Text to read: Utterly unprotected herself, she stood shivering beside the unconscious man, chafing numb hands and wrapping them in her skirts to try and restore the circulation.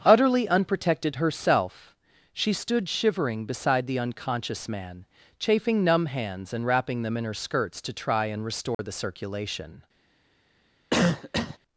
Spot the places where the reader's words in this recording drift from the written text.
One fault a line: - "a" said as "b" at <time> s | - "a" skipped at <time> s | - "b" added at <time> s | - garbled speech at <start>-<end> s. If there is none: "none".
none